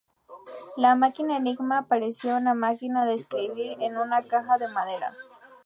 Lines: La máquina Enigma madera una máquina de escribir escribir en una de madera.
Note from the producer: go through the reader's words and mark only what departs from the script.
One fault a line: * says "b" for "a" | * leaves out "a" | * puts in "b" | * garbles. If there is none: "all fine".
* says "parecía" for "madera"
* leaves out "escribir"
* puts in "caja"